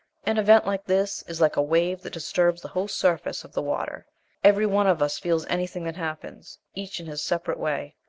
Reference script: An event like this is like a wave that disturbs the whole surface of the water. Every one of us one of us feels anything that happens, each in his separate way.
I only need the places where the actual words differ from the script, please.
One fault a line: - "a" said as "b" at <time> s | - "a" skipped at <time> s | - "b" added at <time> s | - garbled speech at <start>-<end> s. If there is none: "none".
- "one of us" skipped at 5.2 s